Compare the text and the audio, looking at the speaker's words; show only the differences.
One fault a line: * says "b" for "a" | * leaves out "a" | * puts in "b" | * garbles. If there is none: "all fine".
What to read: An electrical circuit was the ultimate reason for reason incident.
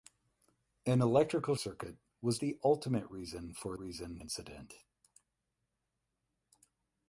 all fine